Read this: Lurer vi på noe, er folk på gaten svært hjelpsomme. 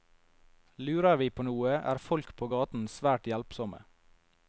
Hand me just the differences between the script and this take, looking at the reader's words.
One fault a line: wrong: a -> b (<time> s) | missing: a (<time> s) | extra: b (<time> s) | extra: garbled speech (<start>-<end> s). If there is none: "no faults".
no faults